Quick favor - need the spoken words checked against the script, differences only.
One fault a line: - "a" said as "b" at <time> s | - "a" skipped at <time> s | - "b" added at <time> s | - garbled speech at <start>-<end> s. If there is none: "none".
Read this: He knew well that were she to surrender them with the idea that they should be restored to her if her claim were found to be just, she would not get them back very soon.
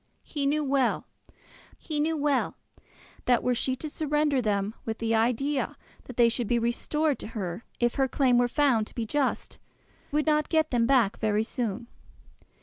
- "he knew well" added at 1.8 s
- "she" skipped at 9.6 s